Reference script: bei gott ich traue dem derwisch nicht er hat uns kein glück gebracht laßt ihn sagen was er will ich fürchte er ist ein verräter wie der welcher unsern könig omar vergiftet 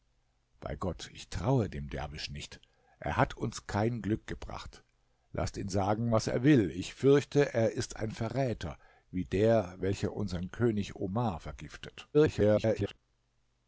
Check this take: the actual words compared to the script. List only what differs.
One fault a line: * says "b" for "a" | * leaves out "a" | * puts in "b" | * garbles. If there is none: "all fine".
* garbles